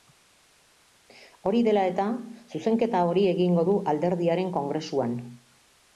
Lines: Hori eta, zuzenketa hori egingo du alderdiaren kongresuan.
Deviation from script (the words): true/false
true